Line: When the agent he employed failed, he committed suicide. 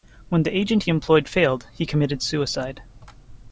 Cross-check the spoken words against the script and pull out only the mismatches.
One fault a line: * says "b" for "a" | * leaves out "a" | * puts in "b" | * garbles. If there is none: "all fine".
all fine